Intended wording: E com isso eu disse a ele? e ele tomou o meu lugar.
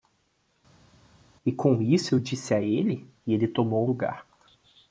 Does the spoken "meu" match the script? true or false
false